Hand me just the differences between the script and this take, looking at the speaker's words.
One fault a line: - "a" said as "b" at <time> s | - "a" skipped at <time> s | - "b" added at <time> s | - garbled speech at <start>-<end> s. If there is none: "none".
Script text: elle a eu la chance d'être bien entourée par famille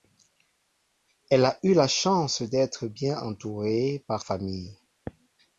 none